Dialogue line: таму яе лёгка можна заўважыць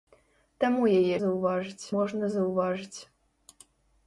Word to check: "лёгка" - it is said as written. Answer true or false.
false